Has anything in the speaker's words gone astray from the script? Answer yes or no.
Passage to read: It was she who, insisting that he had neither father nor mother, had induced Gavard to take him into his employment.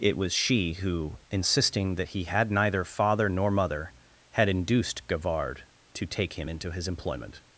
no